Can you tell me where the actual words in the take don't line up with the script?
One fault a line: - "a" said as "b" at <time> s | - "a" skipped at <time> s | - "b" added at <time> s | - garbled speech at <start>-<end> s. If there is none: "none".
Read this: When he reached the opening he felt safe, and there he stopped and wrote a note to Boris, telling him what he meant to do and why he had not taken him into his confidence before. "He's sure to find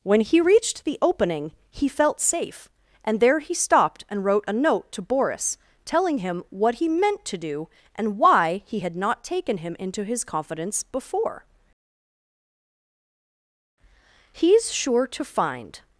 none